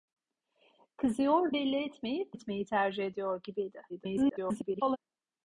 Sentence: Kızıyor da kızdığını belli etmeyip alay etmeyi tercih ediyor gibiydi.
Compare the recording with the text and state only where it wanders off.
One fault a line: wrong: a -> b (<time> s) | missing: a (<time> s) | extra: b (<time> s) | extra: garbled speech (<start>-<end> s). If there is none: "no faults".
missing: da kızdığını (1.5 s)
missing: alay (2.4 s)
extra: garbled speech (3.9-5.0 s)